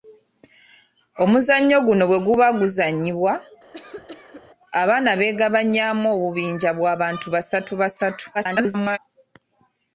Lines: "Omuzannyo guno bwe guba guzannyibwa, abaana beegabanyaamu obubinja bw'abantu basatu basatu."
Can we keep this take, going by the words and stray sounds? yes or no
no